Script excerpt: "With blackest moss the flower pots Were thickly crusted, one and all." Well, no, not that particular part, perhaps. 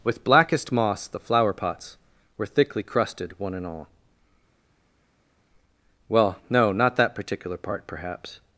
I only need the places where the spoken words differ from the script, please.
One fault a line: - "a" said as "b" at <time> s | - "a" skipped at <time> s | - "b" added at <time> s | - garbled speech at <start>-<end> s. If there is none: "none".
none